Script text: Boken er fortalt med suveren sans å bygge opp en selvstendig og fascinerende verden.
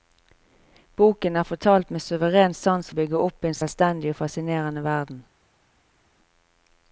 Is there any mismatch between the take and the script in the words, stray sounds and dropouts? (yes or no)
no